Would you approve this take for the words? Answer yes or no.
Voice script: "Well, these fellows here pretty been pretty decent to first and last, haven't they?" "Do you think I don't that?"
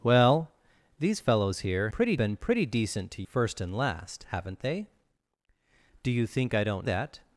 yes